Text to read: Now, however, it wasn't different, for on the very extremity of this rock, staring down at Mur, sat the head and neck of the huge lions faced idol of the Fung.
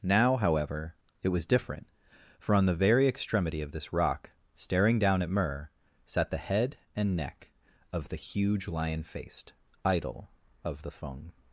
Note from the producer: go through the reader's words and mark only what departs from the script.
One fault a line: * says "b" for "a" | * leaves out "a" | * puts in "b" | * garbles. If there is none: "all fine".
* says "was" for "wasn't"
* says "lion" for "lions"